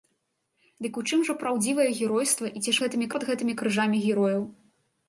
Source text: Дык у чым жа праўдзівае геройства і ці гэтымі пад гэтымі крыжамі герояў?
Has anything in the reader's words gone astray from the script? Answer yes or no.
no